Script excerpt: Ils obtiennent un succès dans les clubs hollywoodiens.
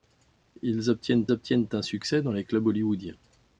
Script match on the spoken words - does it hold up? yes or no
no